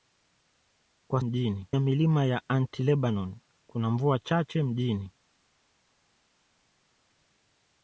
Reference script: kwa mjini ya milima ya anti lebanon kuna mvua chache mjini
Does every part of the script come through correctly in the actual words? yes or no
yes